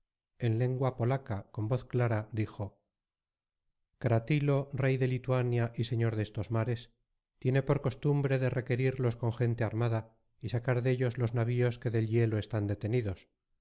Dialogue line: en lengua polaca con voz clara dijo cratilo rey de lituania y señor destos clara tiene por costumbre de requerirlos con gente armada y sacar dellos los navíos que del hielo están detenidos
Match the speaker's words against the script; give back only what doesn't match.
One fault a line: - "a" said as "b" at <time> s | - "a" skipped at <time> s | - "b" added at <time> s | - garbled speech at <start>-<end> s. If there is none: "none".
- "clara" said as "mares" at 6.5 s